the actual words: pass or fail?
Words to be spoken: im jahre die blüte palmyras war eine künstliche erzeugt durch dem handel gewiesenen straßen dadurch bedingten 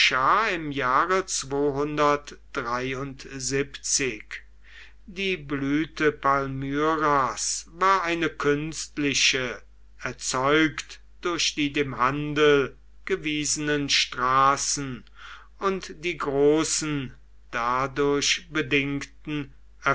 fail